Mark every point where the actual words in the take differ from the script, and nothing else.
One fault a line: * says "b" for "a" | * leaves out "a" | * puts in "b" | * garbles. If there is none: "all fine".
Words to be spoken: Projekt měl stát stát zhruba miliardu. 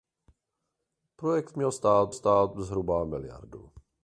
all fine